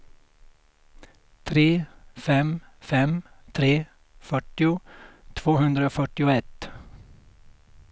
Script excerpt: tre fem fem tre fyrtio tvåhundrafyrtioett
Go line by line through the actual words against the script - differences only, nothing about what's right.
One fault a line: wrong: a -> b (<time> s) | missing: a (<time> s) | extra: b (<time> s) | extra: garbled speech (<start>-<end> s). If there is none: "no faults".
no faults